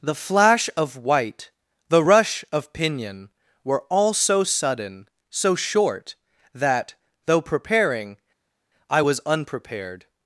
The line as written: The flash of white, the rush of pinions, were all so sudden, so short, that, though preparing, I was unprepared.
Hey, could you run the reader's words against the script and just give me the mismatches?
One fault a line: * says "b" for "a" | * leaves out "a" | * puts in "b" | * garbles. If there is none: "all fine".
* says "pinion" for "pinions"